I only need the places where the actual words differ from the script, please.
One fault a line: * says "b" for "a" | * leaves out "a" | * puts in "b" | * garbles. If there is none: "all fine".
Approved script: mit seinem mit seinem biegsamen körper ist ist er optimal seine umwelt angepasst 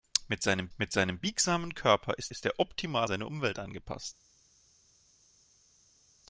all fine